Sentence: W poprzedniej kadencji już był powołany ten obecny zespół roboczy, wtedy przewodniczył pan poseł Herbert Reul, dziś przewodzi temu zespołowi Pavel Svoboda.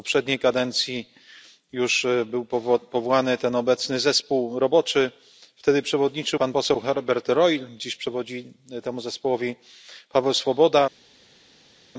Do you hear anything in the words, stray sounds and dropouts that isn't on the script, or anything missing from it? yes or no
no